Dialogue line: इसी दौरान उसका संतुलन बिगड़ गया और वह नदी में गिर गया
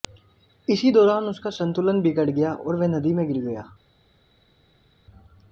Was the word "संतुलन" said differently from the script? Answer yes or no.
no